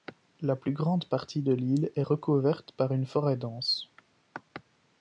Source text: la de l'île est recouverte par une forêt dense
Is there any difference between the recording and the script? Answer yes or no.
yes